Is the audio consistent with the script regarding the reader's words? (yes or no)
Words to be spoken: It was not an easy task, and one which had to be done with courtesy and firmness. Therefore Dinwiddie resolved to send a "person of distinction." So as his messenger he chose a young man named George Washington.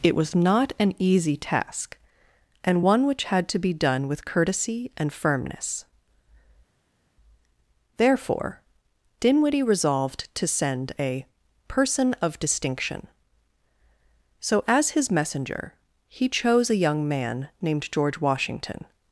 yes